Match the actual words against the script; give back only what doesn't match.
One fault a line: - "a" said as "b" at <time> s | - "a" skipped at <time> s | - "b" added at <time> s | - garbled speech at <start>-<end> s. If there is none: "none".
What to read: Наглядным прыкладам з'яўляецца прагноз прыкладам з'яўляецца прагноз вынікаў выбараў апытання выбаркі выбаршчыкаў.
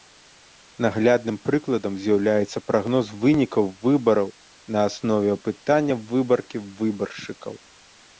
- "прыкладам з'яўляецца прагноз вынікаў выбараў" said as "вынікаў выбараў на аснове" at 3.2 s